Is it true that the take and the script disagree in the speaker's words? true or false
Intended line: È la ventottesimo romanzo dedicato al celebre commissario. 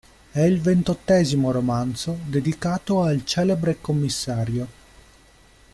true